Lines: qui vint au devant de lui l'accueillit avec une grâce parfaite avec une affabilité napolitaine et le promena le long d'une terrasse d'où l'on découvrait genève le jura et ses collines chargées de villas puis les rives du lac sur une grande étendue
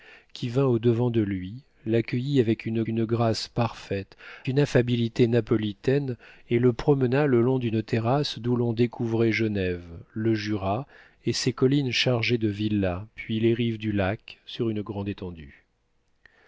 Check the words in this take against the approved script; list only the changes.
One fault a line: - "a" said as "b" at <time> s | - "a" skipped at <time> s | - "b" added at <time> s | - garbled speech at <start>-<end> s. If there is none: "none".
- "une" added at 2.9 s
- "avec" skipped at 4.2 s